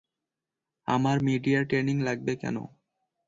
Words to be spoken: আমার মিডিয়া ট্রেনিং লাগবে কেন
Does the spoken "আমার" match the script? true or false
true